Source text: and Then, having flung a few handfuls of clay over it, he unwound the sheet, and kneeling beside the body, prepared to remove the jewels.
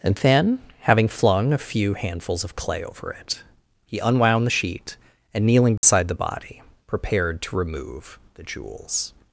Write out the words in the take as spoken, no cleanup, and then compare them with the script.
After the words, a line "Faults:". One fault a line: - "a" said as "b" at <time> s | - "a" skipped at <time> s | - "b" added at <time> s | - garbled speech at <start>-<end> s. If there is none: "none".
and Then, having flung a few handfuls of clay over it, he unwound the sheet, and kneeling beside the body, prepared to remove the jewels.
Faults:
none